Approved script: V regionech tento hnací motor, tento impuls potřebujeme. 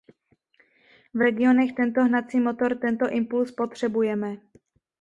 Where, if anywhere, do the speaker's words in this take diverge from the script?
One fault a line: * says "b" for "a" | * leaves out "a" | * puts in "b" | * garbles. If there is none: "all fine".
all fine